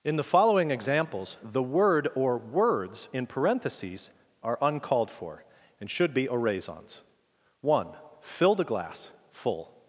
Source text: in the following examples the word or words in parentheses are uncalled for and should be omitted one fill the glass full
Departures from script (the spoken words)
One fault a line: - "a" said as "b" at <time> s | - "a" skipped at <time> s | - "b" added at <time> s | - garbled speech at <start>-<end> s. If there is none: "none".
- "omitted" said as "oraisons" at 6.3 s